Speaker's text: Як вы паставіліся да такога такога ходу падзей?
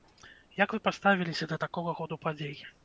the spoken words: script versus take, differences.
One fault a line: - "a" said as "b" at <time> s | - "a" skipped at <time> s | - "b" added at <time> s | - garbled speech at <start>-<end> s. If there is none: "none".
- "такога" skipped at 2.0 s